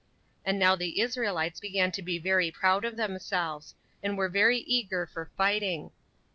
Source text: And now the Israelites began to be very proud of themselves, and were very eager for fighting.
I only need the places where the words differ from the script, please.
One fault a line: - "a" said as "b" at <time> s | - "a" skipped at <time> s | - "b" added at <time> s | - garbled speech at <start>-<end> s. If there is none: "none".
none